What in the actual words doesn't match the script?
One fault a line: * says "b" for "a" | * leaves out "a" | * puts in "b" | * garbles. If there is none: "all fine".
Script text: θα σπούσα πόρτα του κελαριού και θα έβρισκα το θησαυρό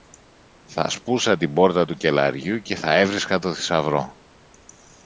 * puts in "την"